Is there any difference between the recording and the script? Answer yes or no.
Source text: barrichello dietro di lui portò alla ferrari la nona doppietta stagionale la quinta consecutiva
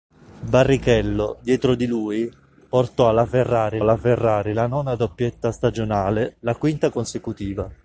yes